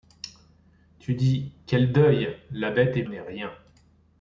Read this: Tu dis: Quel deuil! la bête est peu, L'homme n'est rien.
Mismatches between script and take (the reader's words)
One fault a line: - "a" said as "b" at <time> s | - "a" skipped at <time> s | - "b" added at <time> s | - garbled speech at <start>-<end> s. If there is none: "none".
- "peu L'homme" skipped at 3.0 s